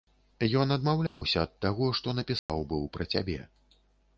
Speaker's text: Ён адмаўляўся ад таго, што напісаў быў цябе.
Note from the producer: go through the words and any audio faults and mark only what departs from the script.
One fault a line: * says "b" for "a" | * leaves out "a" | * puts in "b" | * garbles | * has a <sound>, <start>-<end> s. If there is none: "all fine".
* has a dropout, 1.1-1.2 s
* has a dropout, 2.4-2.5 s
* puts in "пра"